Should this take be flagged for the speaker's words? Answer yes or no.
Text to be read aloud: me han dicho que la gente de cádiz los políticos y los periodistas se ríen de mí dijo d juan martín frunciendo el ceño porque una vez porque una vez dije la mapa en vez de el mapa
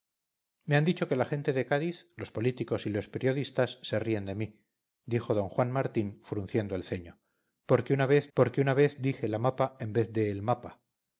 no